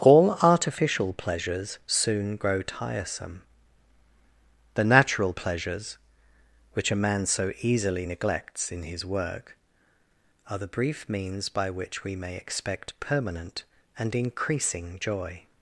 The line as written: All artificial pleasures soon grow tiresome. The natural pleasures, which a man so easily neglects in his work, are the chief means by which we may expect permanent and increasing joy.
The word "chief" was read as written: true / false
false